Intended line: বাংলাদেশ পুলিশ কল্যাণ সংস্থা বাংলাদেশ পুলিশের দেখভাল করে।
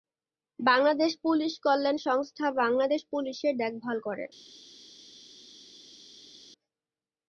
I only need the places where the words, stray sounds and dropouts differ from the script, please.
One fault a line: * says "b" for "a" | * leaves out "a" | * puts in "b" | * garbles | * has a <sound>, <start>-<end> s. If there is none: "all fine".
all fine